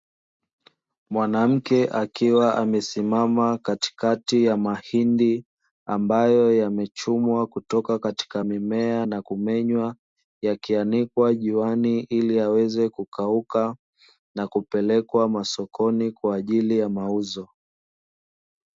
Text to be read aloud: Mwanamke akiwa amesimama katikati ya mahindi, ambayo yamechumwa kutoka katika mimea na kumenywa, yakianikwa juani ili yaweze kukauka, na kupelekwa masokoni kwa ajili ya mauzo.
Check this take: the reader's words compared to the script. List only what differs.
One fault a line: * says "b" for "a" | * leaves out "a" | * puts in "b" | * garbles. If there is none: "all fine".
all fine